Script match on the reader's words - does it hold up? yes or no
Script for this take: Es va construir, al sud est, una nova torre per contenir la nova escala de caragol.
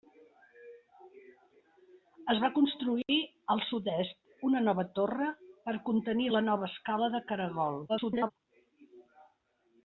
no